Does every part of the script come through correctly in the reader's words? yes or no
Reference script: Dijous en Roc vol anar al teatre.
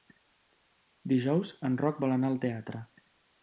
yes